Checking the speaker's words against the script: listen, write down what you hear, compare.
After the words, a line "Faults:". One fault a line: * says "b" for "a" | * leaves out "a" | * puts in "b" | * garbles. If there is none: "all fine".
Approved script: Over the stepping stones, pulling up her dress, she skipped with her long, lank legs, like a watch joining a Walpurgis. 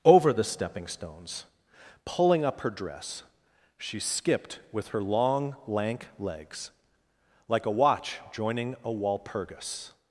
Over the stepping stones, pulling up her dress, she skipped with her long, lank legs, like a watch joining a Walpurgis.
Faults:
all fine